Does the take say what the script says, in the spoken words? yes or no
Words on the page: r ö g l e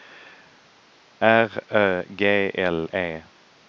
yes